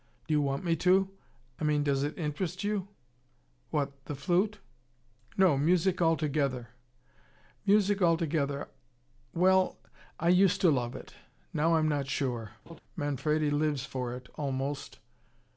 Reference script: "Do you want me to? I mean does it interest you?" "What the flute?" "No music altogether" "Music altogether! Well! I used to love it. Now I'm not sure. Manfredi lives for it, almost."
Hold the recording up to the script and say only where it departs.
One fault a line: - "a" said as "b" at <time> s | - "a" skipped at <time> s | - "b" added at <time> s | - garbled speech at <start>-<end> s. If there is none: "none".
none